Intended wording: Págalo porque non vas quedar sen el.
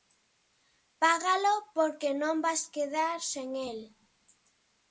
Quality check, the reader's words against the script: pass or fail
pass